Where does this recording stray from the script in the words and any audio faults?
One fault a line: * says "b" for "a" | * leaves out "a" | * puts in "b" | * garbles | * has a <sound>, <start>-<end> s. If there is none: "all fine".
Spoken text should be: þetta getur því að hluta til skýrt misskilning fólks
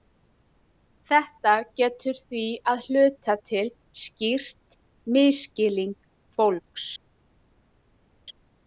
all fine